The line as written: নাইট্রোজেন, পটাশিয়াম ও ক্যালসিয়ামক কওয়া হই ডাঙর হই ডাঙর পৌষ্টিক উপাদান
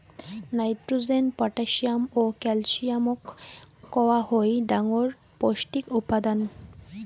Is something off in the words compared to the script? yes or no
yes